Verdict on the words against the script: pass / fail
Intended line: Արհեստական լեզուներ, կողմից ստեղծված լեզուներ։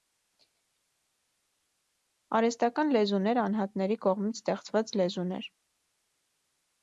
fail